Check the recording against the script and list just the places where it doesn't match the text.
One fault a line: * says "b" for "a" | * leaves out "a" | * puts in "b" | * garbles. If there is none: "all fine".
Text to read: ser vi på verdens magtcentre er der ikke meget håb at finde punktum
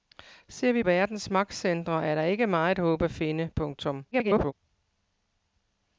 * leaves out "på"
* garbles